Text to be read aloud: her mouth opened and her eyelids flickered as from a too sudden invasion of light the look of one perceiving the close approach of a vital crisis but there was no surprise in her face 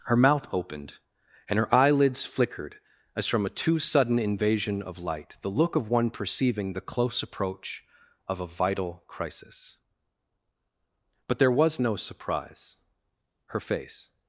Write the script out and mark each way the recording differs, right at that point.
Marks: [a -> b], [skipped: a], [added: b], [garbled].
her mouth opened and her eyelids flickered as from a too sudden invasion of light the look of one perceiving the close approach of a vital crisis but there was no surprise [skipped: in] her face